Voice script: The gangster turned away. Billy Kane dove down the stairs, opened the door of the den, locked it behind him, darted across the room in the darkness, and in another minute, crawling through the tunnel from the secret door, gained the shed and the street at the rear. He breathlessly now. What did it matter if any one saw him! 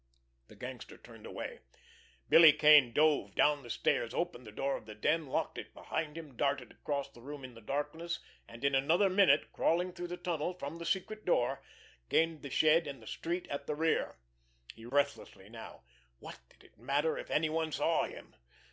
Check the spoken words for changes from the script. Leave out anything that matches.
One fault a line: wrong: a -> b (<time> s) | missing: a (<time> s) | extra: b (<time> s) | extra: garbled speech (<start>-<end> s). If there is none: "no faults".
no faults